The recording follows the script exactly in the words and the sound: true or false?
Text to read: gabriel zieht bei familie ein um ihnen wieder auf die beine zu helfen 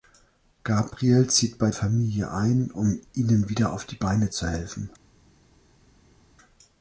true